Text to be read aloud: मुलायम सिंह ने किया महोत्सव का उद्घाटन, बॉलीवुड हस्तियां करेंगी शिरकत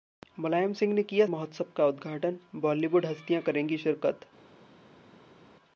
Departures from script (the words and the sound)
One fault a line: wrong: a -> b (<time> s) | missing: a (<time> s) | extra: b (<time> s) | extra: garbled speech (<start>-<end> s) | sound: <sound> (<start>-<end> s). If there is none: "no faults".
no faults